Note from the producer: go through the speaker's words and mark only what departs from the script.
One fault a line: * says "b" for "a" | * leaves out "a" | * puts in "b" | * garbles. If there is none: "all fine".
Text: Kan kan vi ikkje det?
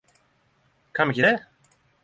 * leaves out "kan"